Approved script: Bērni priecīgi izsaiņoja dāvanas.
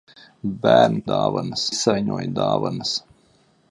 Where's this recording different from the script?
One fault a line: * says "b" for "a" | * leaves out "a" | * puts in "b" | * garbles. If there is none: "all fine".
* says "dāvanas" for "priecīgi"